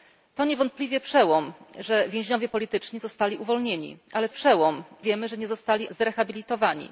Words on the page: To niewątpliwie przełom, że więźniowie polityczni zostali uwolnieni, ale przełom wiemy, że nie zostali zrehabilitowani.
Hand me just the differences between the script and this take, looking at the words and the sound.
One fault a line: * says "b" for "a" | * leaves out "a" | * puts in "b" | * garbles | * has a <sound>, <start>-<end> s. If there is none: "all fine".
all fine